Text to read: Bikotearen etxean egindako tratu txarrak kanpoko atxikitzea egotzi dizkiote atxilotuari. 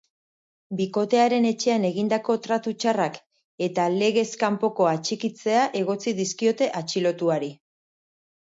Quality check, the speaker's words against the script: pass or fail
fail